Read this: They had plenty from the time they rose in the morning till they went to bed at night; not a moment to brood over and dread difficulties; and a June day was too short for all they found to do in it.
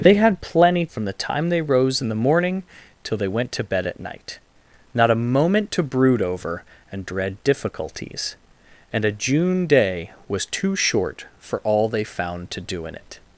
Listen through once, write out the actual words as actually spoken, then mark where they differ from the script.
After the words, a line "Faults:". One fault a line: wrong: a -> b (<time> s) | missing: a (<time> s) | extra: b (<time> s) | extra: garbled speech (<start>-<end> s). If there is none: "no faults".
They had plenty from the time they rose in the morning till they went to bed at night; not a moment to brood over and dread difficulties; and a June day was too short for all they found to do in it.
Faults:
no faults